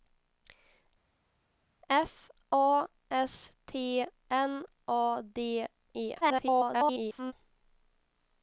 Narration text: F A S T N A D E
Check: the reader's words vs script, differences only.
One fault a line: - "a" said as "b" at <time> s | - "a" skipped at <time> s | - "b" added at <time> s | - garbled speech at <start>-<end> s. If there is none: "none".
- garbled speech at 6.2-7.3 s